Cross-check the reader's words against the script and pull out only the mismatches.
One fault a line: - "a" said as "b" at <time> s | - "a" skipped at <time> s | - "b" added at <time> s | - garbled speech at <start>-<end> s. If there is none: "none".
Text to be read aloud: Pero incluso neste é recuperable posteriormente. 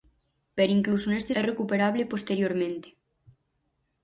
none